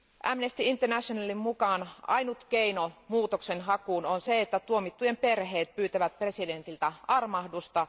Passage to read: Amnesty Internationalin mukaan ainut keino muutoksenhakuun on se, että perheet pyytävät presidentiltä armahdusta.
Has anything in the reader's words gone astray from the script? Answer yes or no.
yes